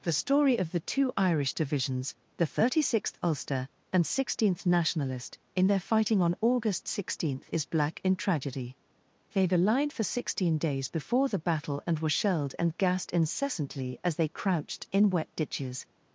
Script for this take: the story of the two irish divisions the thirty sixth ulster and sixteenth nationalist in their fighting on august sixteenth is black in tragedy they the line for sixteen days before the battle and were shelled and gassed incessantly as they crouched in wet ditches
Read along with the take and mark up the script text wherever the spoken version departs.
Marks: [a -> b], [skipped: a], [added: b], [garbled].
the story of the two irish divisions the thirty sixth ulster and sixteenth nationalist in their fighting on august sixteenth is black in tragedy they the line for sixteen days before the battle and were shelled and gassed incessantly as they crouched in wet ditches